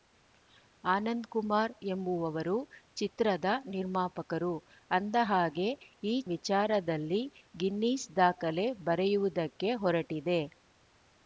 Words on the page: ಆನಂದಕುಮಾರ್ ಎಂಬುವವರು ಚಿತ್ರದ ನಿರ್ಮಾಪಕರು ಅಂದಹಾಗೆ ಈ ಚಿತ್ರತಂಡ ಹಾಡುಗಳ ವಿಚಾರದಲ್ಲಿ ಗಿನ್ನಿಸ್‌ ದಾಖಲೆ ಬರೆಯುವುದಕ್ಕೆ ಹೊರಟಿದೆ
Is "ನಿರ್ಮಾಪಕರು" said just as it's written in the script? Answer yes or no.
yes